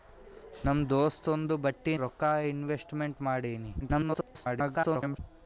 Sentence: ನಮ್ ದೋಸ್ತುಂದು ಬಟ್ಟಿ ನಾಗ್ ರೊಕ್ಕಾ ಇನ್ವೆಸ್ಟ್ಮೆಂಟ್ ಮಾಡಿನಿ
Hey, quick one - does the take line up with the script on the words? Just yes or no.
no